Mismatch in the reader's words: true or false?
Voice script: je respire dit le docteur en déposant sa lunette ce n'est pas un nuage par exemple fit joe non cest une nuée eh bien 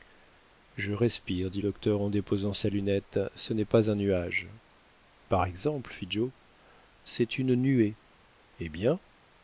true